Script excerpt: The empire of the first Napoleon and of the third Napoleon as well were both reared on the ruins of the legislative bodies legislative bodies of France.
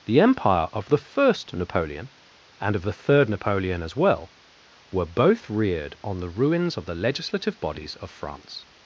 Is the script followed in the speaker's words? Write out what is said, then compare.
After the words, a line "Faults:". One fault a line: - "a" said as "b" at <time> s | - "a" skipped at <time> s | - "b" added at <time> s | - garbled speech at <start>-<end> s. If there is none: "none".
The empire of the first Napoleon and of the third Napoleon as well were both reared on the ruins of the legislative bodies of France.
Faults:
- "legislative bodies" skipped at 8.0 s